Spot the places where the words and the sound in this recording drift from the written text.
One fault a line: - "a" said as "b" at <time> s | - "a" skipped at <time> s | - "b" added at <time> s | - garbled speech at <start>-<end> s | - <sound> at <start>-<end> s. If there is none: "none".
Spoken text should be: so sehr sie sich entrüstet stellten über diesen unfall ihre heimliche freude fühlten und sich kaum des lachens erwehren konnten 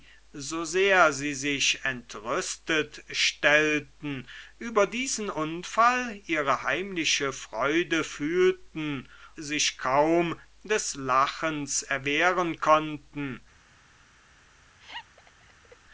- "und" skipped at 9.1 s
- laugh at 14.8-15.8 s